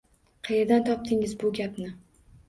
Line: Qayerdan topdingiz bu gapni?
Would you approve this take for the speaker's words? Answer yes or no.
yes